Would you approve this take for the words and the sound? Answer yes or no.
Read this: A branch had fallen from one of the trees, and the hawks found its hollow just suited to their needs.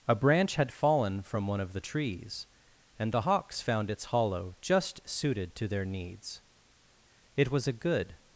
no